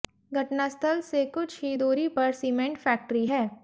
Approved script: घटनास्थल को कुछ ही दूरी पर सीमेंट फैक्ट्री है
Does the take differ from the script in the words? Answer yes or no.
yes